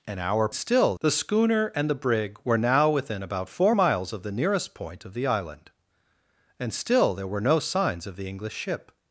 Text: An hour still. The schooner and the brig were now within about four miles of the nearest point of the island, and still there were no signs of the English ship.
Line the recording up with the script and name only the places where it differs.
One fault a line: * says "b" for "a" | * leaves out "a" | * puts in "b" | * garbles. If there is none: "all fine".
all fine